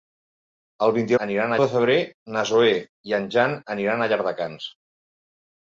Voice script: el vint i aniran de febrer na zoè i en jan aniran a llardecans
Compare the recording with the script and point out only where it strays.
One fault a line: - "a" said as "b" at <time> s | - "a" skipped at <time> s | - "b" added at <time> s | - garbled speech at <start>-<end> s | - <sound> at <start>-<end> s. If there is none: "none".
none